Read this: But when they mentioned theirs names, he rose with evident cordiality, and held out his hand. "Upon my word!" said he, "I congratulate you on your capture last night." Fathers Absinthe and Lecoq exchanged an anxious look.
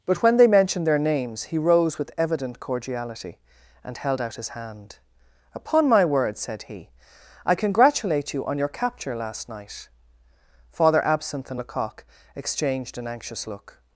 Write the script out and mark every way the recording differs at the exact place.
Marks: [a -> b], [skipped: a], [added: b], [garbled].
But when they mentioned [theirs -> their] names, he rose with evident cordiality, and held out his hand. "Upon my word!" said he, "I congratulate you on your capture last night." [Fathers -> Father] Absinthe and Lecoq exchanged an anxious look.